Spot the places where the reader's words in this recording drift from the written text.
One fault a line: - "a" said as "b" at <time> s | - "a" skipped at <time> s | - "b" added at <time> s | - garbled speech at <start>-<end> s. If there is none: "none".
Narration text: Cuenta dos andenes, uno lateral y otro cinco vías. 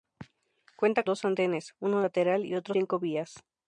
none